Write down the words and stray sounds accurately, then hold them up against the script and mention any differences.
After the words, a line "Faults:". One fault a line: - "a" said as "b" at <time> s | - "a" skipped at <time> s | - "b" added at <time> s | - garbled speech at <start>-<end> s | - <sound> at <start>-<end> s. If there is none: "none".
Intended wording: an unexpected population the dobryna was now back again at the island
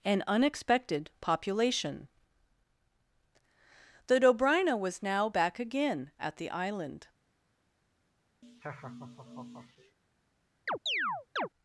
an unexpected population the dobryna was now back again at the island
Faults:
- laugh at 8.4-10.0 s
- chirp at 10.7-11.5 s